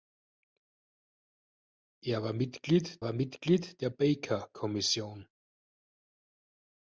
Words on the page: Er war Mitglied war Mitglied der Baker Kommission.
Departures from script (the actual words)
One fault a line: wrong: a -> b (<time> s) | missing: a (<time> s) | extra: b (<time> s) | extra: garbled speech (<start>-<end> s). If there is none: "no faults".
no faults